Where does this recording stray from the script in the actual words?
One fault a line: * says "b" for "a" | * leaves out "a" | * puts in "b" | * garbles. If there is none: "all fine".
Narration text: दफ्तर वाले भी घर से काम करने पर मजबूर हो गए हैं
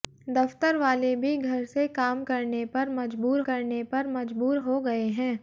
* puts in "करने पर मजबूर"